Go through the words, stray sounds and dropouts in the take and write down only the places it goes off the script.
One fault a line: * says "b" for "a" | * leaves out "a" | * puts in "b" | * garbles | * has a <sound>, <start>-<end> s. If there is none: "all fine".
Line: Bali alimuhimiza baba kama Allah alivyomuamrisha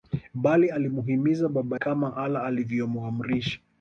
all fine